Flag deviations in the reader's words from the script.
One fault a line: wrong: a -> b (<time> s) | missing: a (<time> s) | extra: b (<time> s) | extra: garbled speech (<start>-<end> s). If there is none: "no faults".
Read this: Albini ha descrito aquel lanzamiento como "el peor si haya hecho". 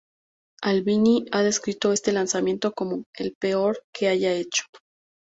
wrong: aquel -> este (1.9 s)
wrong: si -> que (3.9 s)